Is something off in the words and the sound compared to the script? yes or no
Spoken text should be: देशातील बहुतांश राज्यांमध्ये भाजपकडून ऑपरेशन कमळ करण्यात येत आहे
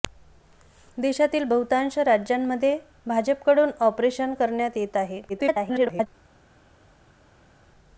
yes